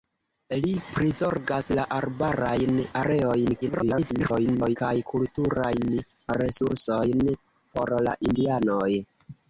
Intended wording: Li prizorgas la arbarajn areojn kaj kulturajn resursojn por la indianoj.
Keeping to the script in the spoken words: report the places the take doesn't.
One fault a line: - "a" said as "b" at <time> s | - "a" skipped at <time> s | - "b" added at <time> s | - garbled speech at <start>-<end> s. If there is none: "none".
- garbled speech at 3.6-4.8 s